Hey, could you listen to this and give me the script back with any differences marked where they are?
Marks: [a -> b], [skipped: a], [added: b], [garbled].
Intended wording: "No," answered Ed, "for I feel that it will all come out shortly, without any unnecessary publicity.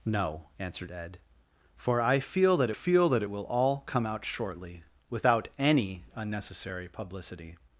"No," answered Ed, "for I feel that [added: feel that] it will all come out shortly, without any unnecessary publicity.